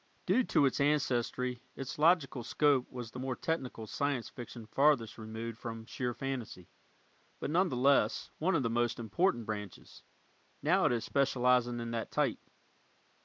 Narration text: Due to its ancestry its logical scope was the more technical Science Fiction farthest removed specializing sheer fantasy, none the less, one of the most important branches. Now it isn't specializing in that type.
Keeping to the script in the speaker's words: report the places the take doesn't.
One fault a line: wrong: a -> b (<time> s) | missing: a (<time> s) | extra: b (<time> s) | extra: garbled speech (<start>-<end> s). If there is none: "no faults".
wrong: specializing -> from (5.6 s)
extra: but (7.4 s)
wrong: isn't -> is (10.9 s)